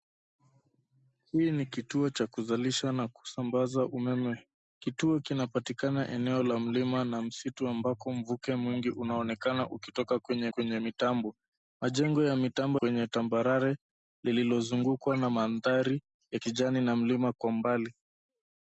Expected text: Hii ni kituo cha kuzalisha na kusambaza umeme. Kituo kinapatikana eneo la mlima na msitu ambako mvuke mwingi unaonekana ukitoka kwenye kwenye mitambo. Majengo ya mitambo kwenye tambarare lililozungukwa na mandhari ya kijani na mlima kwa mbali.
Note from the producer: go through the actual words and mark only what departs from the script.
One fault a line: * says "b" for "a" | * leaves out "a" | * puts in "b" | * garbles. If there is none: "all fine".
all fine